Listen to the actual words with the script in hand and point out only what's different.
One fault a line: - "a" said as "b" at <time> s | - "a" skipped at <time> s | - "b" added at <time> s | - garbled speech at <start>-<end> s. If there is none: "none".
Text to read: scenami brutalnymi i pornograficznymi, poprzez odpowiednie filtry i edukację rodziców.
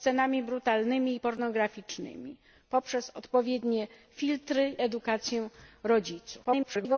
- "i" skipped at 4.8 s
- garbled speech at 6.4-7.0 s